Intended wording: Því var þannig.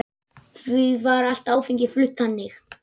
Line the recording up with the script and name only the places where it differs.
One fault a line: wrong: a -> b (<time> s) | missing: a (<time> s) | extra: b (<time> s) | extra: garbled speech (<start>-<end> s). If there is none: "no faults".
extra: allt áfengi flutt (1.3 s)